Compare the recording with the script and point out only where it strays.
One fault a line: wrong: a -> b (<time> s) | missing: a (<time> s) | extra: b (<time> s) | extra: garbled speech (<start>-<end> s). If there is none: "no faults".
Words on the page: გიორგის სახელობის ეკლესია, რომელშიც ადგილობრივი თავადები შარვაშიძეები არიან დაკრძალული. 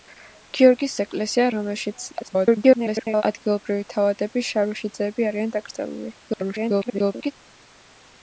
missing: სახელობის (0.9 s)
extra: garbled speech (2.2-3.2 s)
extra: garbled speech (6.2-7.3 s)